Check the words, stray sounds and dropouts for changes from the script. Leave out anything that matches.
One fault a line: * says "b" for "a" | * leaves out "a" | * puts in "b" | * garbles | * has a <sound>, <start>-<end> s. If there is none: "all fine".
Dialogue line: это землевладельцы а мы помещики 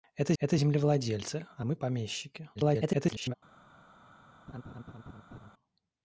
* puts in "это"
* garbles
* has a laugh, 4.5-5.5 s